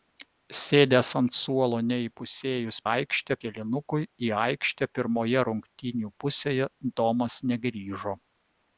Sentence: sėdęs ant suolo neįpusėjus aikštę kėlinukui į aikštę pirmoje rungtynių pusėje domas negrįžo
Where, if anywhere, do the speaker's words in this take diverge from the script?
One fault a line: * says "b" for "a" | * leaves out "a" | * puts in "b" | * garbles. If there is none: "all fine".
all fine